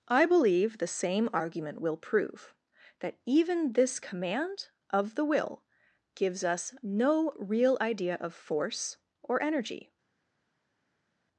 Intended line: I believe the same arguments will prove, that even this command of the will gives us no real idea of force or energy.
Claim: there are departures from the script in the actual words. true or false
true